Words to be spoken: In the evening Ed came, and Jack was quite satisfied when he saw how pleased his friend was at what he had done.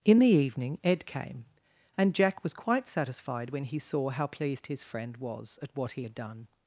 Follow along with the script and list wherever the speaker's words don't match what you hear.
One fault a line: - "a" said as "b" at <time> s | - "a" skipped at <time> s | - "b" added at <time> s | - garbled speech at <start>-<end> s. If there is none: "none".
none